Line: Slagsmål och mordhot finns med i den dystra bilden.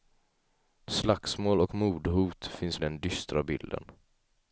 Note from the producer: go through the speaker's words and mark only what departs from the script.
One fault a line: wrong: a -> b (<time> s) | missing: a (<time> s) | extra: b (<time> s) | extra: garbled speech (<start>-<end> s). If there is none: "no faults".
missing: med (2.8 s)